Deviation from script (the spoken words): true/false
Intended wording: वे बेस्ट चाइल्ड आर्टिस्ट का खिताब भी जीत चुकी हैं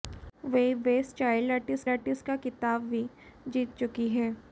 true